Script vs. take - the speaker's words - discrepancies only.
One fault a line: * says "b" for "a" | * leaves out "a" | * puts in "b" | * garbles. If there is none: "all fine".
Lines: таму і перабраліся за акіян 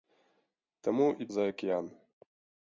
* leaves out "перабраліся"